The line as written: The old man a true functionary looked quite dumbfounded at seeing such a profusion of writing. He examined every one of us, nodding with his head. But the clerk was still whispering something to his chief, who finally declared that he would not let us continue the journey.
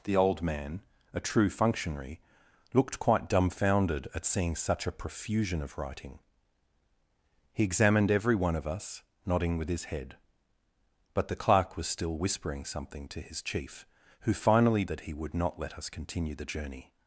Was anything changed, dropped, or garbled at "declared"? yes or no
yes